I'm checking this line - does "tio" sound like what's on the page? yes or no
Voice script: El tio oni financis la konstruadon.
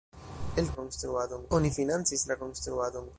no